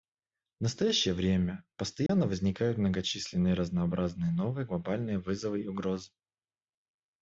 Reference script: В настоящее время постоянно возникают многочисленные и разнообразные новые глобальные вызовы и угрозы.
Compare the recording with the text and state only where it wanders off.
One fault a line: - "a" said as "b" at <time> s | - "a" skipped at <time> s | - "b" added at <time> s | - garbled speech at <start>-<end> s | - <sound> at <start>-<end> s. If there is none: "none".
- dropout at 2.1-2.1 s